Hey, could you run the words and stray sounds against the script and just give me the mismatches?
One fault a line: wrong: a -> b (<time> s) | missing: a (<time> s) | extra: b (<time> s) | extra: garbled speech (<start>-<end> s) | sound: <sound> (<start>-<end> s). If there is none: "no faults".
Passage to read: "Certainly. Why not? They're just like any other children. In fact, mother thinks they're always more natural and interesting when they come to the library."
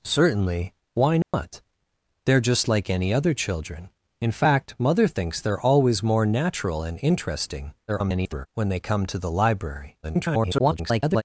sound: dropout (1.2-1.3 s)
extra: garbled speech (7.9-8.5 s)
extra: garbled speech (10.0-11.2 s)